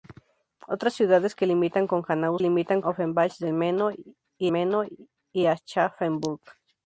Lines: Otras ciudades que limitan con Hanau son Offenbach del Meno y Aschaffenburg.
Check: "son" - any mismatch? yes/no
yes